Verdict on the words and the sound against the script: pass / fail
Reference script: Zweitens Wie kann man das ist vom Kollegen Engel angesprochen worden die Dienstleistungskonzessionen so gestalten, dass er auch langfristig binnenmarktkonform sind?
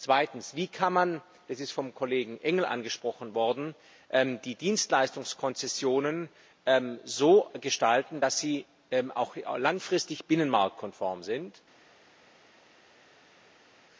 fail